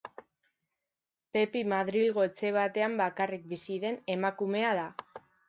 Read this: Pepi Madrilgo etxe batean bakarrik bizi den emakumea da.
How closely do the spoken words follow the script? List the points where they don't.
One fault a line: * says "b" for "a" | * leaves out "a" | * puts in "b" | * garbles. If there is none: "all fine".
all fine